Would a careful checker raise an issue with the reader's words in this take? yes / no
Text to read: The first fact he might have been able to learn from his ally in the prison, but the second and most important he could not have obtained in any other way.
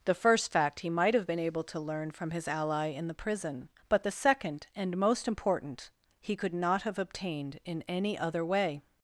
no